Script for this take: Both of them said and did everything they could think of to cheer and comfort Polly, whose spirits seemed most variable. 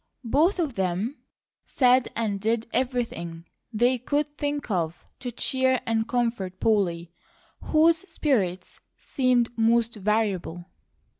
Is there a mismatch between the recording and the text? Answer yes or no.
no